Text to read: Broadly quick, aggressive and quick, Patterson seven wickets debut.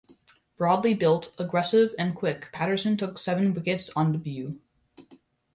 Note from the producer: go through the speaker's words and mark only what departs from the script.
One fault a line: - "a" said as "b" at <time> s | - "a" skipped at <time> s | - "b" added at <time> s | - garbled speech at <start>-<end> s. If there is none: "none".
- "quick" said as "built" at 0.9 s
- "took" added at 2.9 s
- "on" added at 4.0 s